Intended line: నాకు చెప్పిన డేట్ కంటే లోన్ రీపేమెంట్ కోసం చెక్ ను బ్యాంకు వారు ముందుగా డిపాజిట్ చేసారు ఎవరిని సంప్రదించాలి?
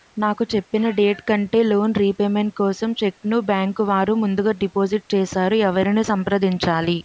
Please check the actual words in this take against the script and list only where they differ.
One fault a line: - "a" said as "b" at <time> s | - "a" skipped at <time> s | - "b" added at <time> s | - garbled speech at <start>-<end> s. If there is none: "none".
none